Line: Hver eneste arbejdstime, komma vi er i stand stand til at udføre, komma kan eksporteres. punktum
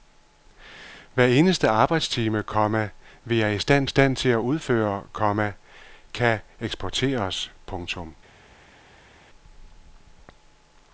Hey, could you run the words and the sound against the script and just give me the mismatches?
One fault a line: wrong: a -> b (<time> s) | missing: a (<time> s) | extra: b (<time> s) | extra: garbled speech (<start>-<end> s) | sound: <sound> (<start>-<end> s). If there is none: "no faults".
no faults